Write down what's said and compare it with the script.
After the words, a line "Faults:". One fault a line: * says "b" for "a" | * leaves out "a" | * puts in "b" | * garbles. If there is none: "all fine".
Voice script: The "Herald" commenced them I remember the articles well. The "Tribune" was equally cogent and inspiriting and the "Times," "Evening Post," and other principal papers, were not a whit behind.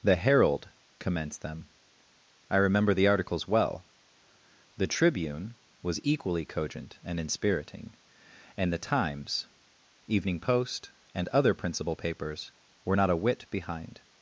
The "Herald" commenced them I remember the articles well. The "Tribune" was equally cogent and inspiriting and the "Times," "Evening Post," and other principal papers, were not a whit behind.
Faults:
all fine